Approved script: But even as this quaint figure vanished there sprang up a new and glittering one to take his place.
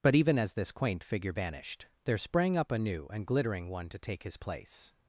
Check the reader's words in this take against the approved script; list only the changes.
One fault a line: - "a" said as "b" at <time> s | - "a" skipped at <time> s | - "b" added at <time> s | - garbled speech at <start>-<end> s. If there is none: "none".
none